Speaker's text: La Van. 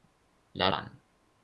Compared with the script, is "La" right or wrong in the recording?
right